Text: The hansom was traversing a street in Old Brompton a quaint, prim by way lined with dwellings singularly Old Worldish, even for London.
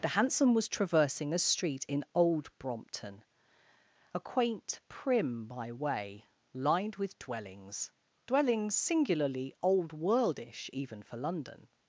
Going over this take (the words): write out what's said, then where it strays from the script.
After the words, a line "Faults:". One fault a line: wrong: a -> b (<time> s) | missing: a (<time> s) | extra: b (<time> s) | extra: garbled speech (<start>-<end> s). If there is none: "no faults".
The hansom was traversing a street in Old Brompton a quaint, prim by way lined with dwellings dwellings singularly Old Worldish, even for London.
Faults:
extra: dwellings (8.3 s)